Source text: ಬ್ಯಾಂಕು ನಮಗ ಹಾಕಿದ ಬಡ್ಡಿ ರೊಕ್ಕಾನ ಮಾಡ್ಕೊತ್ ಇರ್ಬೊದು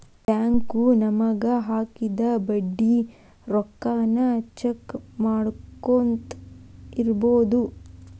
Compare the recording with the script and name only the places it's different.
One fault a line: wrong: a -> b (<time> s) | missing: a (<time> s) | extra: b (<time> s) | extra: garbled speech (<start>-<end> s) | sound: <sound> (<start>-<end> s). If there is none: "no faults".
extra: ಚೆಕ್ (4.6 s)